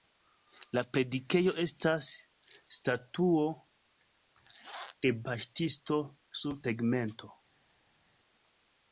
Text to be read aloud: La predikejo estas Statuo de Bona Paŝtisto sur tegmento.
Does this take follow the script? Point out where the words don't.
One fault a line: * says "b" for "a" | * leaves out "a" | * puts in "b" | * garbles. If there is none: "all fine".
* leaves out "Bona"